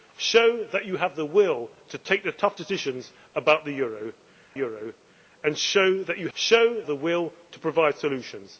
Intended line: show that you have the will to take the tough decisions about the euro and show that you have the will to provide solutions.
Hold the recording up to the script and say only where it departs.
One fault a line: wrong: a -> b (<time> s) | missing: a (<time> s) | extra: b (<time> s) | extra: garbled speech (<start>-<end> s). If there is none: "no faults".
extra: euro (4.5 s)
wrong: have -> show (6.3 s)